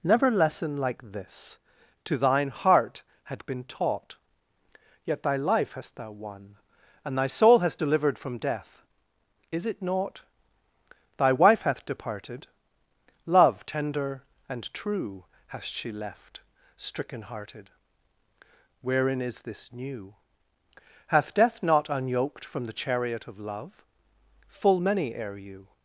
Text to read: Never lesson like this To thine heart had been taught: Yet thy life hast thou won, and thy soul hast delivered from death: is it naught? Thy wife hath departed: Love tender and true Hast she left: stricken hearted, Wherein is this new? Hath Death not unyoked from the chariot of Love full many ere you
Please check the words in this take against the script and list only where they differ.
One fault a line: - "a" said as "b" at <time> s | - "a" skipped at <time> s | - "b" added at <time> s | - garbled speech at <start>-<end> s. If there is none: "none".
none